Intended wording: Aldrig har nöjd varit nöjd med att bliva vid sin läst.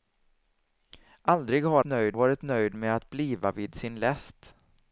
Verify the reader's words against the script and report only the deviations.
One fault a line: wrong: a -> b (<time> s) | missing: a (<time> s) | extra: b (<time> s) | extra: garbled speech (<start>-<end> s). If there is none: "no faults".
no faults